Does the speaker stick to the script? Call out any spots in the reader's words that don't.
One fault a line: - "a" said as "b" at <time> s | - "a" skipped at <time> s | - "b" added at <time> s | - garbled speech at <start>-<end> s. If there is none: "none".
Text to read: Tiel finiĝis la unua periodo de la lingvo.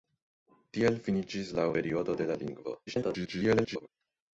- "unua" skipped at 1.7 s
- garbled speech at 2.9-3.9 s